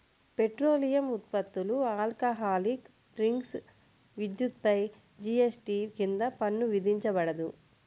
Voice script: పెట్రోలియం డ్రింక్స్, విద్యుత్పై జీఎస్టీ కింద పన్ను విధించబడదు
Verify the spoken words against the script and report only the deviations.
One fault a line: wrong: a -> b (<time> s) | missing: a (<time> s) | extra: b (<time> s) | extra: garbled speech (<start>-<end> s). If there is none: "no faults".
extra: ఉత్పత్తులు ఆల్కహాలిక్ (1.1 s)